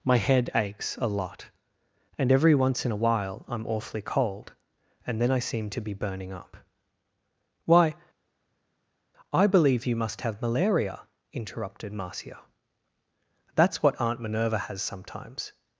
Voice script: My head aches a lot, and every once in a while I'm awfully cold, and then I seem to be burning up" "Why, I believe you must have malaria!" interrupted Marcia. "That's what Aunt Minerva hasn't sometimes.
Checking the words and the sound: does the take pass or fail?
fail